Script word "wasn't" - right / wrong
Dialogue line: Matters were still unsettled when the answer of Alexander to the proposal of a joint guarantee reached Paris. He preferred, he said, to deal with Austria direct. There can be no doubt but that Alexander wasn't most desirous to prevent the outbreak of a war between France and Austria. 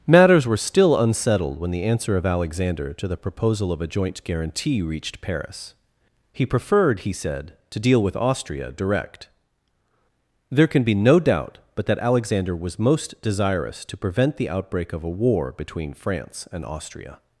wrong